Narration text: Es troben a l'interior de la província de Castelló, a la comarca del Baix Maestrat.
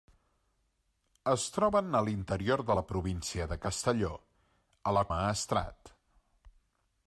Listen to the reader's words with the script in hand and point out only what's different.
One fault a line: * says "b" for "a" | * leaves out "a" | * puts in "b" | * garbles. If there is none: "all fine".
* leaves out "comarca del Baix"